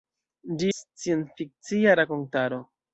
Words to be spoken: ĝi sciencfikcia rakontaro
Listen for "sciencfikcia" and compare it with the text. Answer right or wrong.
right